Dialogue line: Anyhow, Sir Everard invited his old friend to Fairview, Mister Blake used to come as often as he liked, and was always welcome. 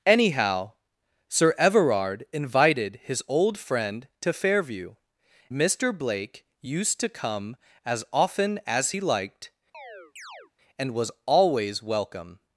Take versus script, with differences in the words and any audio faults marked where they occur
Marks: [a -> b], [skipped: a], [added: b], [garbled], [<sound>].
Anyhow, Sir Everard invited his old friend to Fairview, Mister Blake used to come as often as he liked, [chirp] and was always welcome.